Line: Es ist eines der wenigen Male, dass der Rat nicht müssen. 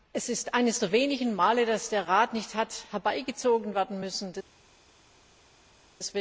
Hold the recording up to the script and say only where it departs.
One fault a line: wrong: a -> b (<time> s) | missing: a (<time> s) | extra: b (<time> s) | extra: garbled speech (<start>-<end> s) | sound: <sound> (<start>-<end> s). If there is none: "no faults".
extra: hat herbeigezogen werden (2.5 s)